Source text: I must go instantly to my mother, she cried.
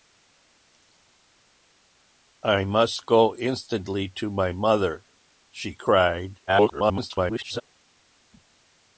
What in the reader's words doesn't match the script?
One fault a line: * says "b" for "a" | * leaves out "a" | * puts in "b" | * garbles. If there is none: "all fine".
* garbles